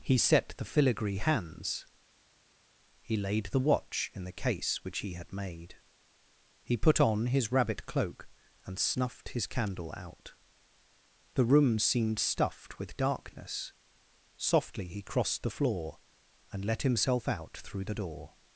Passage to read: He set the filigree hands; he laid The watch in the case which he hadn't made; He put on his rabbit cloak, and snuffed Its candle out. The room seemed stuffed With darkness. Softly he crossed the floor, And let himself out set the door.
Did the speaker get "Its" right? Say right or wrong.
wrong